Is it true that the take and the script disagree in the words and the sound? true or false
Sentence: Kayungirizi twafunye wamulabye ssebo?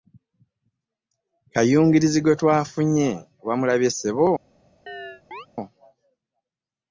true